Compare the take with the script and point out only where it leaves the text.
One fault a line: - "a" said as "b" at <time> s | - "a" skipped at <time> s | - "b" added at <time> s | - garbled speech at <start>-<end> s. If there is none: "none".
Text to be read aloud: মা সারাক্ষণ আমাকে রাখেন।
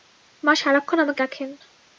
none